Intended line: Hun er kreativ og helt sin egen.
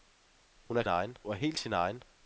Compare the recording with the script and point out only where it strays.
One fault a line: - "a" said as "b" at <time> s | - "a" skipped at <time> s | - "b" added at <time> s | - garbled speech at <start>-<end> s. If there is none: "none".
- "kreativ" said as "egen" at 0.9 s